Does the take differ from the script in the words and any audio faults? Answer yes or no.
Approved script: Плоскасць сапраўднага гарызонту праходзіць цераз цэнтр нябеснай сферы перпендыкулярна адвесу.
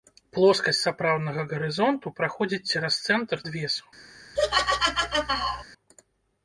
yes